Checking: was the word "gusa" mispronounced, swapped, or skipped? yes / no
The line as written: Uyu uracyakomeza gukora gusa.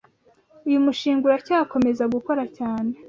yes